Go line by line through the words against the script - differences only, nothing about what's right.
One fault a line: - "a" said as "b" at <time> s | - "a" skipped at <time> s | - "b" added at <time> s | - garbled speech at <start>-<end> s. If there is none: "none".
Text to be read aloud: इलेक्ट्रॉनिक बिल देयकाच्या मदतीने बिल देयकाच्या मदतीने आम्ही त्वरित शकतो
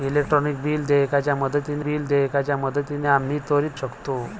none